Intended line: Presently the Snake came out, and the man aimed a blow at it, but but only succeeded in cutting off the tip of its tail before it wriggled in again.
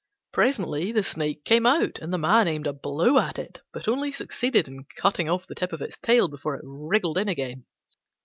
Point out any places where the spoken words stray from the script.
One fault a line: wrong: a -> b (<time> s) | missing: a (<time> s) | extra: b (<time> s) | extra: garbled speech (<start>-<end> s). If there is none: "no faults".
missing: but (3.9 s)